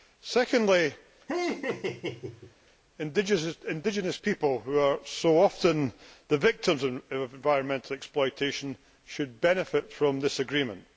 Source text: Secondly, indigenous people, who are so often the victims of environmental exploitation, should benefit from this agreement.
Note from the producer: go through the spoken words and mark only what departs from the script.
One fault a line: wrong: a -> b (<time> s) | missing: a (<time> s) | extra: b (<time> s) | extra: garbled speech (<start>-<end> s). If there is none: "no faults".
no faults